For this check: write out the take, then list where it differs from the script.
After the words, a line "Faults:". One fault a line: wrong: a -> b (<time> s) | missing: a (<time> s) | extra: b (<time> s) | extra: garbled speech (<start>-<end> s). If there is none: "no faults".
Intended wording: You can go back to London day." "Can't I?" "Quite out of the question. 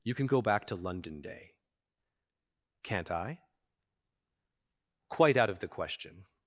You can go back to London day." "Can't I?" "Quite out of the question.
Faults:
no faults